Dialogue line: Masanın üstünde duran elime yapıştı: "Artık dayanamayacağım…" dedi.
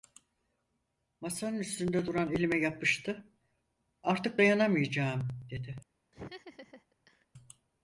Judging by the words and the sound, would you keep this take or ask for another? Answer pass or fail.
fail